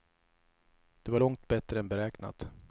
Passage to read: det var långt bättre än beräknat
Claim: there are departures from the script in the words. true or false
false